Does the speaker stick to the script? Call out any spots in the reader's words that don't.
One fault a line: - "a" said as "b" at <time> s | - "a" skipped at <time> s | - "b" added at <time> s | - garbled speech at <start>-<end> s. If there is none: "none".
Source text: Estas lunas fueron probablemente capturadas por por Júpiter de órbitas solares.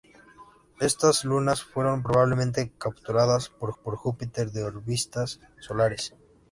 none